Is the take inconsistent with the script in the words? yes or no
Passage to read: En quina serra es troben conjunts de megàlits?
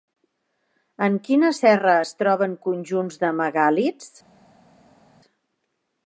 no